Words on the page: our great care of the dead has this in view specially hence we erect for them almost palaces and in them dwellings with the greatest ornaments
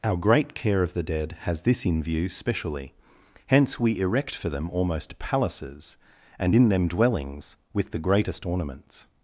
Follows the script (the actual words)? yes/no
yes